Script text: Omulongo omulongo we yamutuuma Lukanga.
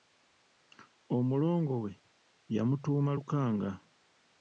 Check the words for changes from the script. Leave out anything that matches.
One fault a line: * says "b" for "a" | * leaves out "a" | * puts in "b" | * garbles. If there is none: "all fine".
* leaves out "omulongo"